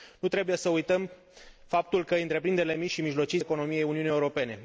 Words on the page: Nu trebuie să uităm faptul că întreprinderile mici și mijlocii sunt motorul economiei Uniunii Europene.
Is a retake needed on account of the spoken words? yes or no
yes